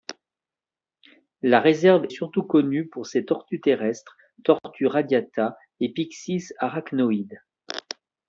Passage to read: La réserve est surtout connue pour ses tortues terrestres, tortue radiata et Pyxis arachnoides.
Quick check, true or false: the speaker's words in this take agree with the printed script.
false